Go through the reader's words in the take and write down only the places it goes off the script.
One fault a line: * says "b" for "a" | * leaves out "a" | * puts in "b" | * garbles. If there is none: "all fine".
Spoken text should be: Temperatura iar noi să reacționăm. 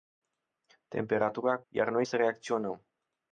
all fine